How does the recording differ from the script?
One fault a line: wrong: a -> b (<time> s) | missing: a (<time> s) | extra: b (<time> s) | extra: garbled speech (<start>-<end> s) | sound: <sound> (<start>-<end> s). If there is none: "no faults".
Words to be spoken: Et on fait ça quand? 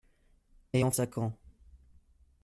missing: fait (0.9 s)